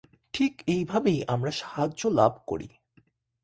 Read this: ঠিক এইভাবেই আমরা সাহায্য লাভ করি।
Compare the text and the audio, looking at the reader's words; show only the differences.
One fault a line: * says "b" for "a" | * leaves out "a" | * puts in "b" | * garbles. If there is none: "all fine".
all fine